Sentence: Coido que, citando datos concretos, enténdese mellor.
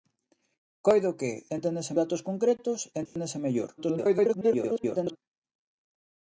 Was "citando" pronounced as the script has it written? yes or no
no